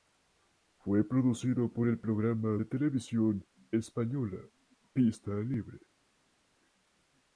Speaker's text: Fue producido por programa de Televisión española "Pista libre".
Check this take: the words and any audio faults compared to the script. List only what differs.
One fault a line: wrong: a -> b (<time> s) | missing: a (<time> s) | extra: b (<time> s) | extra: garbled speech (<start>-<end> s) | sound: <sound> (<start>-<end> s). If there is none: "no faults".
extra: el (1.9 s)